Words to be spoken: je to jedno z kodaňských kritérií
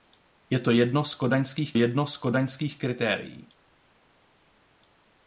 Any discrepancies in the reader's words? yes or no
yes